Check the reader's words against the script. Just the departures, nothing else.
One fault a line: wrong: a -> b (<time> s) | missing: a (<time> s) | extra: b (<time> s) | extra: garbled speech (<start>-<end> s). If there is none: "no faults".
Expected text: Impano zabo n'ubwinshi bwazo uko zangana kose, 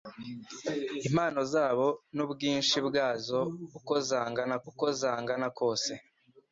extra: uko zangana (4.7 s)